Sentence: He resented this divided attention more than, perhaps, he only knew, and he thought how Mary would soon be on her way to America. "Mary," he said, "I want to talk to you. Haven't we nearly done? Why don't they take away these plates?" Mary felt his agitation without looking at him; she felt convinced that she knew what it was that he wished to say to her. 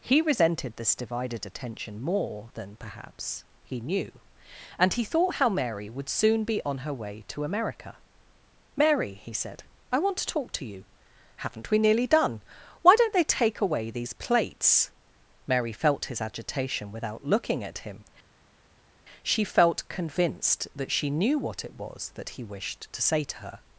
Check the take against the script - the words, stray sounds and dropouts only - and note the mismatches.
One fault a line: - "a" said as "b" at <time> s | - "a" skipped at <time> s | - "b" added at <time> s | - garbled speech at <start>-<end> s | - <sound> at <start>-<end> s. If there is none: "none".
- "only" skipped at 3.8 s